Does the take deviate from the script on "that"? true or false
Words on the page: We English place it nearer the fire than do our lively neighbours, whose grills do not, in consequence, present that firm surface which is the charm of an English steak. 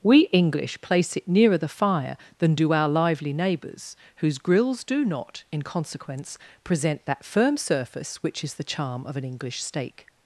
false